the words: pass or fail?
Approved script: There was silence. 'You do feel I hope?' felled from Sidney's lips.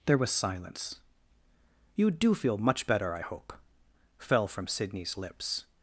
fail